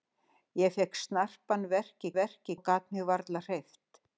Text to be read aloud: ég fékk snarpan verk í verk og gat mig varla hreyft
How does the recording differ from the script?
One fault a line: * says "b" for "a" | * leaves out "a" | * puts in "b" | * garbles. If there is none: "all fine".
all fine